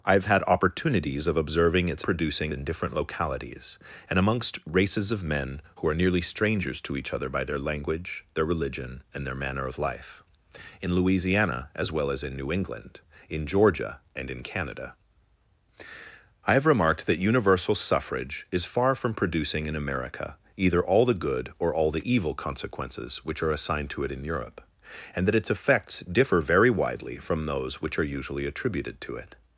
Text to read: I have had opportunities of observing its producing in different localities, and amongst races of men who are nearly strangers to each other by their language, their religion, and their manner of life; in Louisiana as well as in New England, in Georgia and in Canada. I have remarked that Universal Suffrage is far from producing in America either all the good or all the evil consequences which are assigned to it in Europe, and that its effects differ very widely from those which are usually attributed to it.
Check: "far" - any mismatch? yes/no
no